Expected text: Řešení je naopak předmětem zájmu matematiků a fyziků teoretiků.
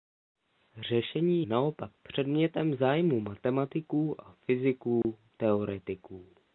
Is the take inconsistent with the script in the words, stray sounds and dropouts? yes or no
yes